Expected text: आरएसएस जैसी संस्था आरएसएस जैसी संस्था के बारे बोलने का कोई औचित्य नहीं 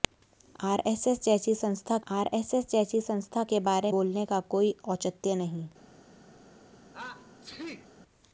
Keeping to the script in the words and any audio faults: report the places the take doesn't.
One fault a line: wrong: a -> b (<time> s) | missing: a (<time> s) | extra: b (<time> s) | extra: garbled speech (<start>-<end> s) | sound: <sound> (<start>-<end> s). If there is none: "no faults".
sound: sneeze (6.9-7.9 s)